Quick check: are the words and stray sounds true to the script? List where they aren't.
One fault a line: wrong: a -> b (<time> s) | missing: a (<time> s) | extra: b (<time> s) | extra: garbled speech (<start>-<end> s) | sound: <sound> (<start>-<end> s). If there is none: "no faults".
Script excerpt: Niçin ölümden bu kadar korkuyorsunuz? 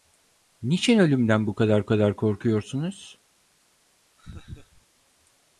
extra: kadar (1.9 s)
sound: laugh (4.2-4.9 s)